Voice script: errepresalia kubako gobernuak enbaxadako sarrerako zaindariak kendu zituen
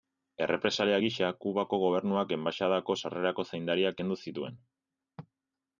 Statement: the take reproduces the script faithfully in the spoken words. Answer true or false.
false